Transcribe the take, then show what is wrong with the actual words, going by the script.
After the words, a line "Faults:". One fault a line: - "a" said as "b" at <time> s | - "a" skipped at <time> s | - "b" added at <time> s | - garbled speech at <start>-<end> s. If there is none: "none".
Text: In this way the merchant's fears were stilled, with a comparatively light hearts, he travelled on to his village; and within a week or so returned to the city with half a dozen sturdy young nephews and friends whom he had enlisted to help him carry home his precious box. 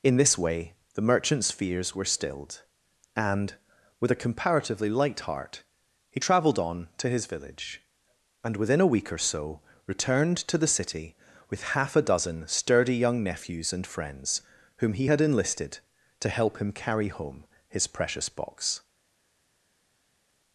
In this way the merchant's fears were stilled, and, with a comparatively light heart, he travelled on to his village; and within a week or so returned to the city with half a dozen sturdy young nephews and friends whom he had enlisted to help him carry home his precious box.
Faults:
- "and" added at 3.1 s
- "hearts" said as "heart" at 5.2 s